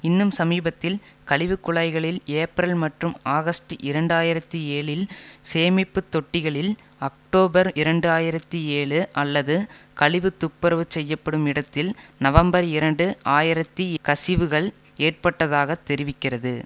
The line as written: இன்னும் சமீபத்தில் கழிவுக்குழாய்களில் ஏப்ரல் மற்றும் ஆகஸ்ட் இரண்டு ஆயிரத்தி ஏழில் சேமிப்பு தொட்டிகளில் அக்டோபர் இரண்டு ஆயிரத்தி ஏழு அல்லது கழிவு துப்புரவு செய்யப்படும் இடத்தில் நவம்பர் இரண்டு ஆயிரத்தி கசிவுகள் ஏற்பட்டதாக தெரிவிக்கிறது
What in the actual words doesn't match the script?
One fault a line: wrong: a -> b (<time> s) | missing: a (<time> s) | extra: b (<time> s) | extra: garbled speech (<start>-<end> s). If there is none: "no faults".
no faults